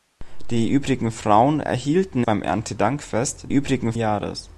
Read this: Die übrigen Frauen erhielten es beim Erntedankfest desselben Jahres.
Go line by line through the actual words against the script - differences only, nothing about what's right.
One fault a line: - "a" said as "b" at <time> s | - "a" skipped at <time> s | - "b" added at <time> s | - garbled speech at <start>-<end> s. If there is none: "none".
- "es" skipped at 2.2 s
- "desselben" said as "übrigen" at 3.5 s